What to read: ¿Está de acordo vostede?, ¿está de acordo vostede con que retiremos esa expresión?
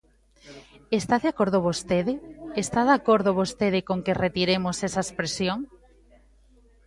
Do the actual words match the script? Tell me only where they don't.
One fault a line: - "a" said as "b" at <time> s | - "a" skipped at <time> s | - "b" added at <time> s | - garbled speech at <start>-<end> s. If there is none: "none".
none